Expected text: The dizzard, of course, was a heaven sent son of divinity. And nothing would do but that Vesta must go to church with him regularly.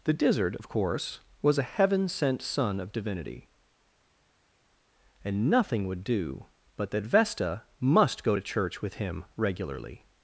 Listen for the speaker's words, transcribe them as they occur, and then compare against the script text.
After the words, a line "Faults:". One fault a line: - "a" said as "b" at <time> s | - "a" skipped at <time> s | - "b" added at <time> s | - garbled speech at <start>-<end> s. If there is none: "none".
The dizzard, of course, was a heaven sent son of divinity. And nothing would do but that Vesta must go to church with him regularly.
Faults:
none